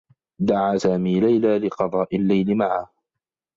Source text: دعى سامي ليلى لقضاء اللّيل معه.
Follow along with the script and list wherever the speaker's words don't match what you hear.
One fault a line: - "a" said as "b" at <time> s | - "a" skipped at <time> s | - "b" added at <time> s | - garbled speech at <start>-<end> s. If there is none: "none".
none